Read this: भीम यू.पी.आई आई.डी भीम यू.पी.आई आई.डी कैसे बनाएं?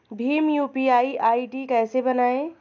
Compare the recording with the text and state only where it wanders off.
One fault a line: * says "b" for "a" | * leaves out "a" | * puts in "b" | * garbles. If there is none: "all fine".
* leaves out "भीम यू.पी.आई आई.डी"